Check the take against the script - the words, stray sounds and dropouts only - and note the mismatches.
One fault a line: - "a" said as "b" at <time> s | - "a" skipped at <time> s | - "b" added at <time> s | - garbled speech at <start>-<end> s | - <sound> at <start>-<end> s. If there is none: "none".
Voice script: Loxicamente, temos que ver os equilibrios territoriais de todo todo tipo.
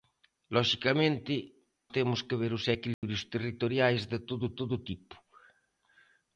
- dropout at 2.9-3.0 s